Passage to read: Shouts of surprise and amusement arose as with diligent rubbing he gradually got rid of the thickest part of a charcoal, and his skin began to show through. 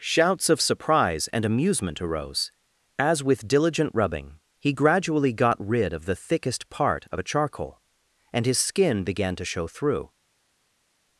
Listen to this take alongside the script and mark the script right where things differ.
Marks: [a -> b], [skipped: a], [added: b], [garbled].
Shouts of surprise and amusement arose as with diligent rubbing he gradually got rid of the thickest part of a charcoal, and his skin began to show through.